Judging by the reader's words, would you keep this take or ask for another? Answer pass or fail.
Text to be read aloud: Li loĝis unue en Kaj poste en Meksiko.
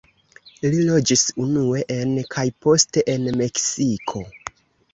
pass